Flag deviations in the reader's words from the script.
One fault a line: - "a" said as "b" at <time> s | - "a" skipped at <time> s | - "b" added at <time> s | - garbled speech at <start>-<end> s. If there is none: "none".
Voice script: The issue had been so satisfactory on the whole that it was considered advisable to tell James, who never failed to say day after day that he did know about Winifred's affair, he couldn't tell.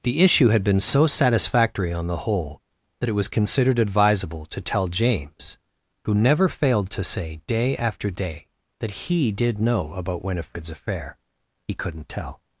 none